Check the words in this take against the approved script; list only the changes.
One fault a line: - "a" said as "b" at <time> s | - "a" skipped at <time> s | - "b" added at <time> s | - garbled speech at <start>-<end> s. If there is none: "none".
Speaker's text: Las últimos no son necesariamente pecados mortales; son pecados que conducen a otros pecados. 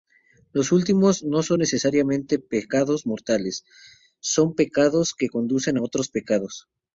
- "Las" said as "Los" at 0.5 s